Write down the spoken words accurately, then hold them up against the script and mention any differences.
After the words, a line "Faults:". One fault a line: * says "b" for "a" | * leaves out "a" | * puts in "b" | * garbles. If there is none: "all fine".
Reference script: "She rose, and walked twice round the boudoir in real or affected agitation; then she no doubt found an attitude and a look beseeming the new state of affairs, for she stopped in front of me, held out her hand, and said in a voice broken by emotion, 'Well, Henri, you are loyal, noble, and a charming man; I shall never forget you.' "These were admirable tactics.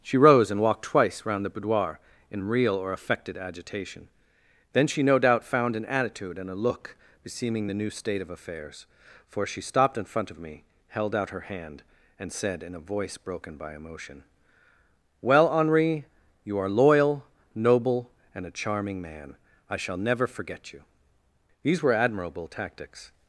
"She rose, and walked twice round the boudoir in real or affected agitation; then she no doubt found an attitude and a look beseeming the new state of affairs, for she stopped in front of me, held out her hand, and said in a voice broken by emotion, 'Well, Henri, you are loyal, noble, and a charming man; I shall never forget you.' "These were admirable tactics.
Faults:
all fine